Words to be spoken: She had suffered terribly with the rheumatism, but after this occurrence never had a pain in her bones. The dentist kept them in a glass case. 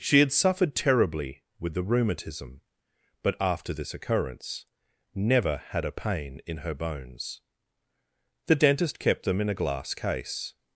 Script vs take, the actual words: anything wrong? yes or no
no